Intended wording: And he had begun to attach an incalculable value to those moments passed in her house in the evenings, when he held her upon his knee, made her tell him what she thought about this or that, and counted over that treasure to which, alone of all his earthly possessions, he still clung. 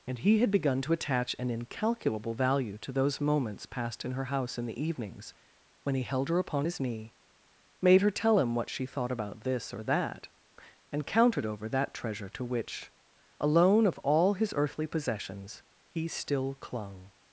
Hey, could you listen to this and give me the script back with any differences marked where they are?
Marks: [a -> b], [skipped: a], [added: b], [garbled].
And he had begun to attach an incalculable value to those moments passed in her house in the evenings, when he held her upon his knee, made her tell him what she thought about this or that, and counted over that treasure to which, alone of all his earthly possessions, he still clung.